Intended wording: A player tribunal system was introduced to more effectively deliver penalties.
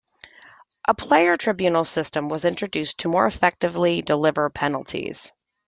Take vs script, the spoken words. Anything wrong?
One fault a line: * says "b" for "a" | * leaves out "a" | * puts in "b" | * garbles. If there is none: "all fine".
all fine